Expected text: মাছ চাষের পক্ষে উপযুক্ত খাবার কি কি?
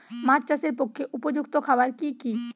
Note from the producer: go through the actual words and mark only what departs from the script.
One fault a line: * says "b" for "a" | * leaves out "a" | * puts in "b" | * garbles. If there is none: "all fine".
all fine